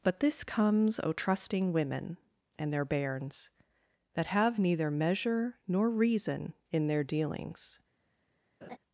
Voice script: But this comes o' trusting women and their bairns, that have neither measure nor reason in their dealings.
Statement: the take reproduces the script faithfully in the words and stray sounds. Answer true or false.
false